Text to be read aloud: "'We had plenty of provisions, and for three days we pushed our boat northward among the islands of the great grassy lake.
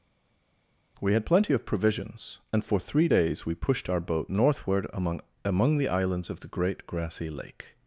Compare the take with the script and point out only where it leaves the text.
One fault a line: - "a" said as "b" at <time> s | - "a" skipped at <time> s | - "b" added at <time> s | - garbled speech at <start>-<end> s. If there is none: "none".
- "among" added at 5.4 s